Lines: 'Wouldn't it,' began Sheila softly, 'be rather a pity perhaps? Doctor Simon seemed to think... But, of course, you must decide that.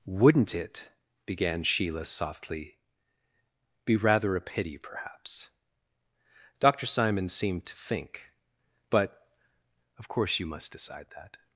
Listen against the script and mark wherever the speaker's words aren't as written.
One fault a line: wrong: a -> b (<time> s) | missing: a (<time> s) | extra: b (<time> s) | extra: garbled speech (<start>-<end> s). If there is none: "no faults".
no faults